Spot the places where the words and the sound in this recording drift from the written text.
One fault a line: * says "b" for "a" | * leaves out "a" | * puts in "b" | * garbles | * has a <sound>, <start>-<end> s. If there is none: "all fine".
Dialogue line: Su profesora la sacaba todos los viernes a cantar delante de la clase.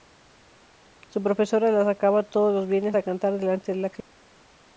all fine